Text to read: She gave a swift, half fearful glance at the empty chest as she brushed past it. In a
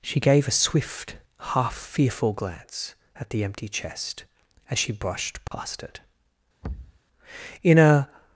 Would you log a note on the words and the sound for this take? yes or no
yes